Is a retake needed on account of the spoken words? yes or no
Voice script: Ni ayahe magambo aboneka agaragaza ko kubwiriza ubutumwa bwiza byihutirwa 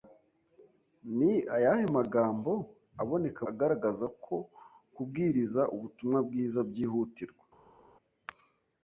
no